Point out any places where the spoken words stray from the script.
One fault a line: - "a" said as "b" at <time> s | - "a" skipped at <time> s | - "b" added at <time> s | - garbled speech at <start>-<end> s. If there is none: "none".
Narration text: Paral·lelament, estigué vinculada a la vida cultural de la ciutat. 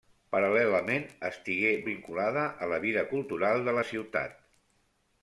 none